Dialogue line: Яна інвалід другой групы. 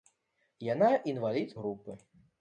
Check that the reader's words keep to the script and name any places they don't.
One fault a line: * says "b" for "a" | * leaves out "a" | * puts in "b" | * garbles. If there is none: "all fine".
* leaves out "другой"